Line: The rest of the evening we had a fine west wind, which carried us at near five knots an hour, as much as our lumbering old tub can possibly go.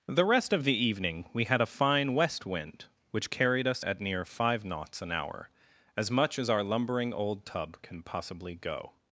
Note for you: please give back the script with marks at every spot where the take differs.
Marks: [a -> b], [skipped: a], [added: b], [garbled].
The rest of the evening we had a fine west wind, which carried us at near five knots an hour, as much as our lumbering old tub can possibly go.